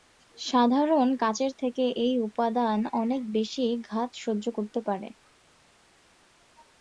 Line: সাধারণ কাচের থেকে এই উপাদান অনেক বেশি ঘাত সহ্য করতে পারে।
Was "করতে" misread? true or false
false